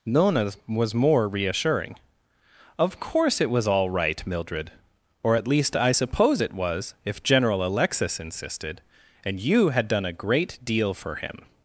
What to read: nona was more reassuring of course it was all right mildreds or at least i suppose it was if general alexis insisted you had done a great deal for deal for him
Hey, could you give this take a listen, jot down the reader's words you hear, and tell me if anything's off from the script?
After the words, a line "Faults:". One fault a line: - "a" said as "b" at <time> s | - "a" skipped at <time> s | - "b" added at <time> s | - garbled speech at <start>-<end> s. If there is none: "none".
nona was more reassuring of course it was all right mildred or at least i suppose it was if general alexis insisted and you had done a great deal for him
Faults:
- "mildreds" said as "mildred" at 4.2 s
- "and" added at 9.2 s
- "deal for" skipped at 11.2 s